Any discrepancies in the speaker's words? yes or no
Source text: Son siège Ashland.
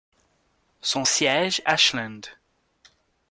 no